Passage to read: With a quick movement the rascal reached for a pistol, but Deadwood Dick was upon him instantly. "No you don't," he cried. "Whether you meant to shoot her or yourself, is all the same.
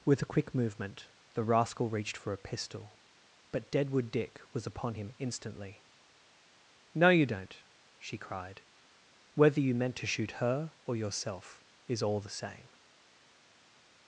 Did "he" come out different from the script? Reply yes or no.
yes